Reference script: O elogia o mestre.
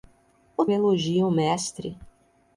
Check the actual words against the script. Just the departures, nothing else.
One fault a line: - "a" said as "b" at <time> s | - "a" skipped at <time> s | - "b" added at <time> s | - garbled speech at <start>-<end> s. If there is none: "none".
none